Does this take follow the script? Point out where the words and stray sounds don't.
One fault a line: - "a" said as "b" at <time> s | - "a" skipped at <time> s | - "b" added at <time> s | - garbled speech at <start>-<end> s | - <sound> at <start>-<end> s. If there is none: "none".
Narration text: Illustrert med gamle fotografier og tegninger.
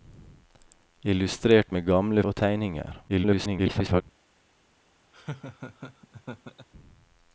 - "fotografier" skipped at 2.2 s
- garbled speech at 3.1-4.0 s
- laugh at 5.1-6.7 s